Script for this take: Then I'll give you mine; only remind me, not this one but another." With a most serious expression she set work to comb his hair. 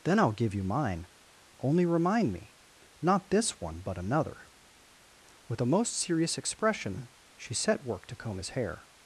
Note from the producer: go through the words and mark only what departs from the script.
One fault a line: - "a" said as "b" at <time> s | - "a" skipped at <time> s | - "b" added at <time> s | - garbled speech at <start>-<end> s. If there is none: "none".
none